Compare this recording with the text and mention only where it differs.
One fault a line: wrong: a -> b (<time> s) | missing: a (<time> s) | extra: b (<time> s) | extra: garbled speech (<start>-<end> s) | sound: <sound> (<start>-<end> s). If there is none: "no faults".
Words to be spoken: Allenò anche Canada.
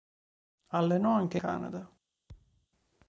sound: thud (2.3-2.7 s)